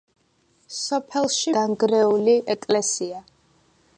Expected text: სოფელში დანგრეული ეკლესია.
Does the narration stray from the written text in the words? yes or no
no